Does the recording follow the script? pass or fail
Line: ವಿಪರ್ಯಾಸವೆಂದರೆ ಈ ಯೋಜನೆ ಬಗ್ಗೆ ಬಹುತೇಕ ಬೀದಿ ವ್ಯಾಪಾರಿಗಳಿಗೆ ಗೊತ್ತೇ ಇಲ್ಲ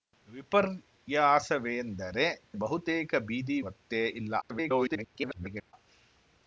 fail